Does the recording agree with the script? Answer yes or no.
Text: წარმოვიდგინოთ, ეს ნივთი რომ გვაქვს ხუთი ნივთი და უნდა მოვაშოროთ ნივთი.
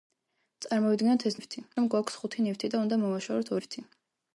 yes